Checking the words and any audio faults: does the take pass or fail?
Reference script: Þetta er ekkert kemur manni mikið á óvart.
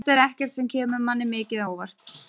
fail